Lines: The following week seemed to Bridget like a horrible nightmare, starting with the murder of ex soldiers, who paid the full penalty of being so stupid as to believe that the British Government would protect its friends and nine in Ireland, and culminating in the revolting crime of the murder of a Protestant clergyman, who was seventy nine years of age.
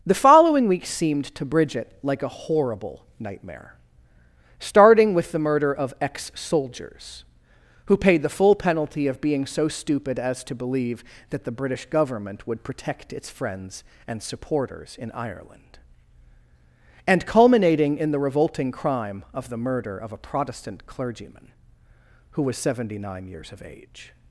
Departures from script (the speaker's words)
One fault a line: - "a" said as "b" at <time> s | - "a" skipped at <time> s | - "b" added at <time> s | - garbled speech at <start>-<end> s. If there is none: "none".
- "nine" said as "supporters" at 14.2 s